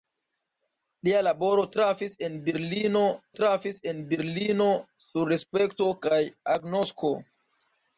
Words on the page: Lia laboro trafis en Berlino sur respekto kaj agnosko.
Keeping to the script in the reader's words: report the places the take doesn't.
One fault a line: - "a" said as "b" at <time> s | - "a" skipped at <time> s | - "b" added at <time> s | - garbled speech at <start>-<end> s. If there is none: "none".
- "trafis en Berlino" added at 3.4 s